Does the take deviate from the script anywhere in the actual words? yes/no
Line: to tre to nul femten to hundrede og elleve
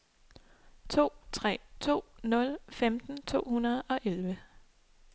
no